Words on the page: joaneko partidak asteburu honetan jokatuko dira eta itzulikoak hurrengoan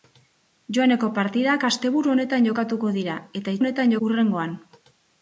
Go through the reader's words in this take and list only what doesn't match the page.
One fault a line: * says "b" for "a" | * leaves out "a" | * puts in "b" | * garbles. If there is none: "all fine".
* says "honetan" for "itzulikoak"